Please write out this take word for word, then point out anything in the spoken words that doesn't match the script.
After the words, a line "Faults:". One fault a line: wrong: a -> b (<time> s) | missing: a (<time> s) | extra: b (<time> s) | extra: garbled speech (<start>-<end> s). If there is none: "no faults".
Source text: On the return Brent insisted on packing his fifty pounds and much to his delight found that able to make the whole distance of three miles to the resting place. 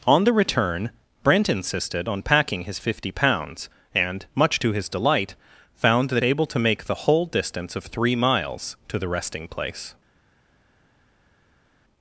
On the return Brent insisted on packing his fifty pounds and much to his delight found that able to make the whole distance of three miles to the resting place.
Faults:
no faults